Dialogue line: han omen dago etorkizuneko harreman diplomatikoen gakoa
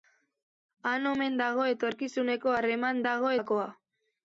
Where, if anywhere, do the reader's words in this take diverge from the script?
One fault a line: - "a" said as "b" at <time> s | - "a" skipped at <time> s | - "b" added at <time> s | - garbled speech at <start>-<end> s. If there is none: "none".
- "diplomatikoen" said as "dago" at 3.1 s